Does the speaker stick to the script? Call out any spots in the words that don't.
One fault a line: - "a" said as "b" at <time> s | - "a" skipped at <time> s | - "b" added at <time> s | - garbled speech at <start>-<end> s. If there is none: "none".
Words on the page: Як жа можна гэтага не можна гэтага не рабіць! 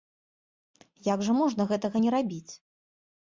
- "можна гэтага не" skipped at 2.1 s